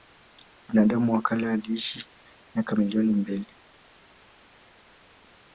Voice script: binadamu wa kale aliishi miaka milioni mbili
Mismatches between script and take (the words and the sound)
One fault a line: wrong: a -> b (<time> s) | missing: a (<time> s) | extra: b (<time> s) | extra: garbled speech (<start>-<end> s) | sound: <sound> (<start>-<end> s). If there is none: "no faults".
no faults